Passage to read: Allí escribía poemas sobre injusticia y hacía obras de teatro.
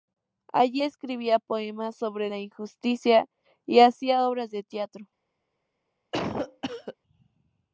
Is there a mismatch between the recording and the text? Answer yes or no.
yes